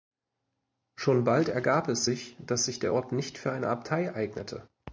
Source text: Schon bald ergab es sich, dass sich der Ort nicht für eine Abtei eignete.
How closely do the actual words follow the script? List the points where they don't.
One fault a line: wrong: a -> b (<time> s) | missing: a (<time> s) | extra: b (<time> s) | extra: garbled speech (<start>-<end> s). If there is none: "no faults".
no faults